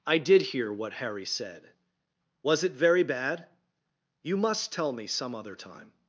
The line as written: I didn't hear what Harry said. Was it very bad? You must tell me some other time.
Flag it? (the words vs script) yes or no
yes